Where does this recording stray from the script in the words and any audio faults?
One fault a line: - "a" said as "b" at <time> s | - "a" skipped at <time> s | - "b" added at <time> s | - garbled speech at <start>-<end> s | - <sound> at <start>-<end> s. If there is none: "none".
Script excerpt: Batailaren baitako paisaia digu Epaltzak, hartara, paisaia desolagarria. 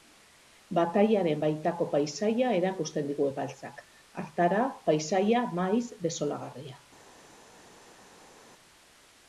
- "erakusten" added at 2.6 s
- "maiz" added at 5.6 s